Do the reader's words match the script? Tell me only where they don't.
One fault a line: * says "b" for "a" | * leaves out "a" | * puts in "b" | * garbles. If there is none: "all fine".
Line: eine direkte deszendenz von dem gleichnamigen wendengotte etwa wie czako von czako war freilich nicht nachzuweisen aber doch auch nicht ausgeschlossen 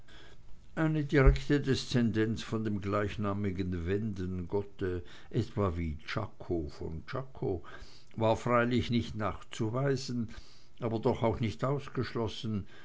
all fine